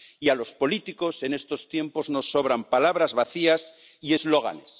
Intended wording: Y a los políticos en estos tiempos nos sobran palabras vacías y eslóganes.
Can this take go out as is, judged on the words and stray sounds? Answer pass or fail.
pass